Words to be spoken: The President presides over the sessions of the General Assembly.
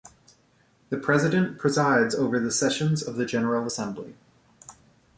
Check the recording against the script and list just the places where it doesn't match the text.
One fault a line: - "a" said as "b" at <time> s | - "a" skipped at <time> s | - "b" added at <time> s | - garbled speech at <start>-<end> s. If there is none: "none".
none